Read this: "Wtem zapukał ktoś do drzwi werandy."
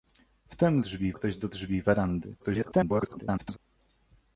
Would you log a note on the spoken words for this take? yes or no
yes